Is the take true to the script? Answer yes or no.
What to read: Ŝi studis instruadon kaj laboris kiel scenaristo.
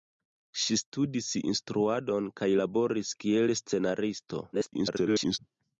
no